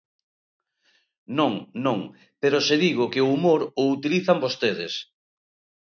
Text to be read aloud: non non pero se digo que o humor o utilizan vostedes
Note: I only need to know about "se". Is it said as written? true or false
true